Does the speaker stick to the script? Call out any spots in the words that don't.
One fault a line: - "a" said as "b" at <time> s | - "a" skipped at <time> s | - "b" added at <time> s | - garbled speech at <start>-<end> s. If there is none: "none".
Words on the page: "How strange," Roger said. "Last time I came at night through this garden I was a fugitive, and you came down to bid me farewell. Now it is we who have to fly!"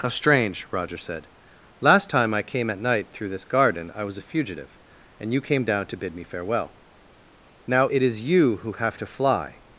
- "we" said as "you" at 8.3 s